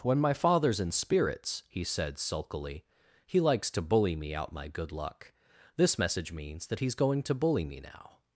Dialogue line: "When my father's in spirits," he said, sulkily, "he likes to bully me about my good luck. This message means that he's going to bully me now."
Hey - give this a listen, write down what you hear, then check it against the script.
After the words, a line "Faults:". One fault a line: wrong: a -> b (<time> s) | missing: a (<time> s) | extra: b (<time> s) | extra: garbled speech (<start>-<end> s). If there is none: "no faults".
"When my father's in spirits," he said, sulkily, "he likes to bully me out my good luck. This message means that he's going to bully me now."
Faults:
wrong: about -> out (4.3 s)